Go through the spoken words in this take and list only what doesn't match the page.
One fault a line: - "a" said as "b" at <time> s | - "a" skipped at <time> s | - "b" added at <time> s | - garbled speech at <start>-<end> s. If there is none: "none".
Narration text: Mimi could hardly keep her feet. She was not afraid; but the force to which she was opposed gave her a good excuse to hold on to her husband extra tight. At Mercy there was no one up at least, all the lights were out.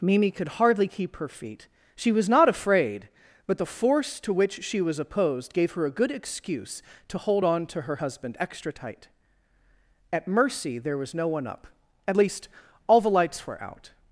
none